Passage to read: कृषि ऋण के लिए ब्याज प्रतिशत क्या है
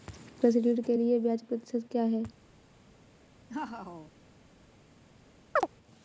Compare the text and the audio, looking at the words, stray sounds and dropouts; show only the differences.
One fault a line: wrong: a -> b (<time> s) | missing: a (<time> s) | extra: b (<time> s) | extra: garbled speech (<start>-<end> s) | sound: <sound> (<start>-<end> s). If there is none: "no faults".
sound: laugh (3.5-4.1 s)
sound: chirp (5.6-5.7 s)